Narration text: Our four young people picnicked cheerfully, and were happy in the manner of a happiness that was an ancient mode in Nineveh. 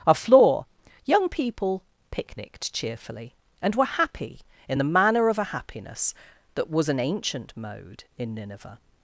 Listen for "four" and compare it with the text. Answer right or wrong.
wrong